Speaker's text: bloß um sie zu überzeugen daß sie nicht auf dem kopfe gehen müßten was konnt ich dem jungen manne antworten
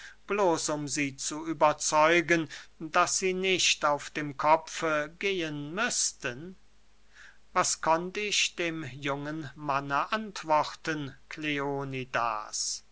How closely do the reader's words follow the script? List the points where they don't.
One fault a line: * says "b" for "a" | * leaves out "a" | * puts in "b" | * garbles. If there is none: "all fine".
all fine